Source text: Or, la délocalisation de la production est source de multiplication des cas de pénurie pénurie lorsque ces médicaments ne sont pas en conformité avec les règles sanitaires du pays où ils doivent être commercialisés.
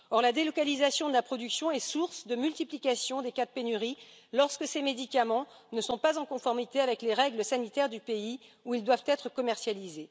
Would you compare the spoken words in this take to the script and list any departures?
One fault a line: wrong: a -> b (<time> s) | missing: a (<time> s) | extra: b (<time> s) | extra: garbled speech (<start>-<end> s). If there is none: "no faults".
missing: pénurie (4.0 s)